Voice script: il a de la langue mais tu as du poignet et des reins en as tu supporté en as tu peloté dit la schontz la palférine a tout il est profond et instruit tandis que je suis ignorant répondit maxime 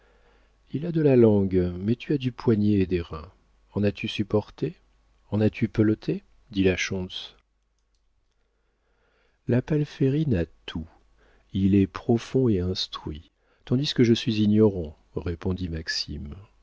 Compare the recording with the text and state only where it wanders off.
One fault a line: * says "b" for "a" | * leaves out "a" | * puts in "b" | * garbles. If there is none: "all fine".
all fine